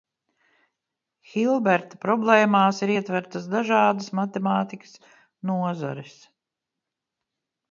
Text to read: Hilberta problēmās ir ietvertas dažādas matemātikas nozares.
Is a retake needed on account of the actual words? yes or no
no